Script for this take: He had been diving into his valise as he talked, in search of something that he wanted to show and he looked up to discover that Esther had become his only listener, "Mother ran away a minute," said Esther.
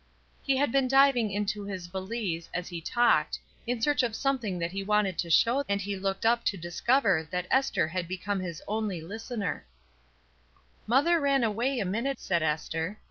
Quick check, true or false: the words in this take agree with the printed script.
true